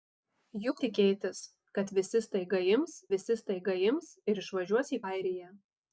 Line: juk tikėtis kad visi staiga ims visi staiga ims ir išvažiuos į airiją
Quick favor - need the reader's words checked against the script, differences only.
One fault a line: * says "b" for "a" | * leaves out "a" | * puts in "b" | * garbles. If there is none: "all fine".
all fine